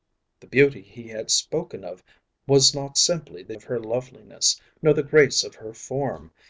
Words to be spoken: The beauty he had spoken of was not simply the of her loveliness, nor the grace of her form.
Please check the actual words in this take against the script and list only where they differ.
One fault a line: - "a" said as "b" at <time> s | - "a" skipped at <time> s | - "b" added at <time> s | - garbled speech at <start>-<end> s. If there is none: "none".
none